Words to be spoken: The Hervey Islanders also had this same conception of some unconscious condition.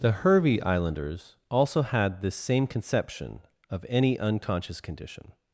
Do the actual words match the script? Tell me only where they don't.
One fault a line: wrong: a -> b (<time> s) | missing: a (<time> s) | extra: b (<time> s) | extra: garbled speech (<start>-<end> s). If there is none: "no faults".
wrong: some -> any (3.9 s)